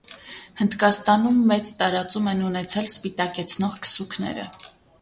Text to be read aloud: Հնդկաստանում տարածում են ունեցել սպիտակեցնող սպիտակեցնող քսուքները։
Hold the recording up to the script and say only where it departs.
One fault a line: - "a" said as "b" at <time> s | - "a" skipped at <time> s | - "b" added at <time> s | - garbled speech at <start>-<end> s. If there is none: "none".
- "մեծ" added at 1.5 s
- "սպիտակեցնող" skipped at 3.8 s